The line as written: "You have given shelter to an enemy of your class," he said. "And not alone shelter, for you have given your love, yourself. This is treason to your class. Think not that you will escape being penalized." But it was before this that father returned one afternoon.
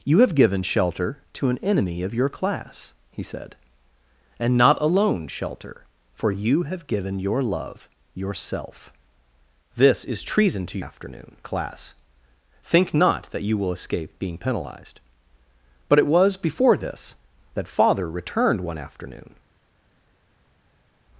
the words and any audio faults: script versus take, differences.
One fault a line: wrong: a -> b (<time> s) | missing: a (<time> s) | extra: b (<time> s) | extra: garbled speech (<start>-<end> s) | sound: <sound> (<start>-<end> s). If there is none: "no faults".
wrong: your -> afternoon (10.8 s)